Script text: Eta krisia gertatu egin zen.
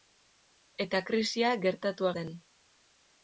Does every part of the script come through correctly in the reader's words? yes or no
no